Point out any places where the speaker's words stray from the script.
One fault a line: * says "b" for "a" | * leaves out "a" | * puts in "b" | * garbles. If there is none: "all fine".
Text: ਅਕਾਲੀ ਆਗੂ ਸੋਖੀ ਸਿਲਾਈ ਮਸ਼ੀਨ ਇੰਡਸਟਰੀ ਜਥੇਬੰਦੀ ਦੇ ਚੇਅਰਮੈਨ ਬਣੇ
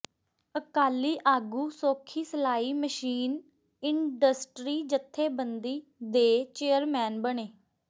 all fine